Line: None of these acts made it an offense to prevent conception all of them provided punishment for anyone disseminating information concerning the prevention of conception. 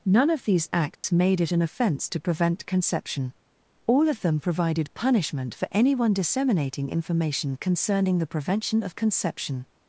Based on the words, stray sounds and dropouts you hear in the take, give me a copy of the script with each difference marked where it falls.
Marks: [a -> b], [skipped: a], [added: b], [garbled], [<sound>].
None of these acts [dropout] made it an offense to prevent conception all of them provided punishment for anyone disseminating information concerning the prevention of conception.